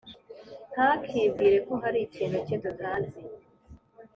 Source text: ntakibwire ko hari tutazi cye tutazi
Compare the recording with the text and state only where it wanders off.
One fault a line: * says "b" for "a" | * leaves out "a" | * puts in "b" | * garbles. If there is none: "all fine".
* says "ikintu" for "tutazi"